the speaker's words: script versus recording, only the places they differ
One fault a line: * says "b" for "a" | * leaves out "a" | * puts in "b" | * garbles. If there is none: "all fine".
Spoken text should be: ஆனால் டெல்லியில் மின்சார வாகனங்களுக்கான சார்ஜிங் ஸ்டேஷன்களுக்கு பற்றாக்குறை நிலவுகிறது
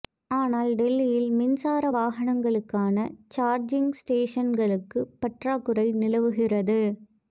all fine